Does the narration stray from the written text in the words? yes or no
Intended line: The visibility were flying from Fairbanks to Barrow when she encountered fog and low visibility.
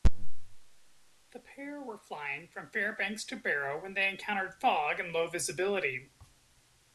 yes